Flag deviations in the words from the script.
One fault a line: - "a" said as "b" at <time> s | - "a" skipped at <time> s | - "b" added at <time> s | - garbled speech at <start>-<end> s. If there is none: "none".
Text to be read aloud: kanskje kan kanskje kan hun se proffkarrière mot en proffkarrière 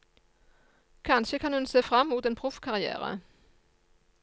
- "kanskje kan" skipped at 1.5 s
- "proffkarrière" said as "frem" at 1.8 s